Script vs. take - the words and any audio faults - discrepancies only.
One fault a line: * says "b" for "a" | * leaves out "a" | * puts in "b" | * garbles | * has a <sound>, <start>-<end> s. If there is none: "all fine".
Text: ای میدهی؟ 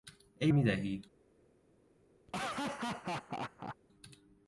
* has a laugh, 2.3-3.8 s